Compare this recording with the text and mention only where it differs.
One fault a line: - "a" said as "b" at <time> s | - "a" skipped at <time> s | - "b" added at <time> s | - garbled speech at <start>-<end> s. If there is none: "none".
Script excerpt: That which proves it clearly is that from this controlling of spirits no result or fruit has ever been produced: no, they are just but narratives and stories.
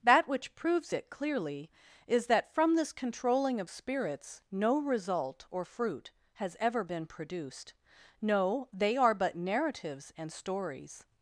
- "just" skipped at 9.1 s